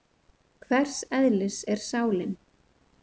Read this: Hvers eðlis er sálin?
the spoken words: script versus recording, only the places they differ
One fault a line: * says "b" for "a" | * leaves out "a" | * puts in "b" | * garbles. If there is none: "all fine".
all fine